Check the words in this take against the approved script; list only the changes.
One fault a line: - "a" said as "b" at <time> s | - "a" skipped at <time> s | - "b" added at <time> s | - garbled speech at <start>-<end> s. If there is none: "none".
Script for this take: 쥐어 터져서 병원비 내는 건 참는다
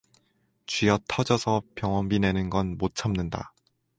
- "못" added at 2.8 s